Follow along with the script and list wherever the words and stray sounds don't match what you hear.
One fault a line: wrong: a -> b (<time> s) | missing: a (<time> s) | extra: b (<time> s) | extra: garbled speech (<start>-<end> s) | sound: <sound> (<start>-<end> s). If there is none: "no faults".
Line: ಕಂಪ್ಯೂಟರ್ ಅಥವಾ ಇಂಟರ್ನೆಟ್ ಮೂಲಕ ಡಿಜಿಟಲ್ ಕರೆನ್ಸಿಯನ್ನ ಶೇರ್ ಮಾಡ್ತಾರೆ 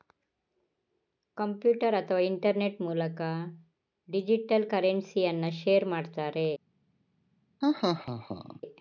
sound: laugh (7.6-8.6 s)